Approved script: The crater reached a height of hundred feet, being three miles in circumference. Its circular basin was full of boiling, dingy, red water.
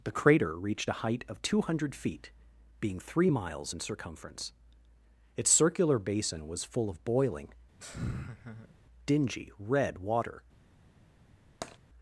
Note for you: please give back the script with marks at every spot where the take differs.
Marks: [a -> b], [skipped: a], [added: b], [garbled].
The crater reached a height of [added: two] hundred feet, being three miles in circumference. Its circular basin was full of boiling, dingy, red water.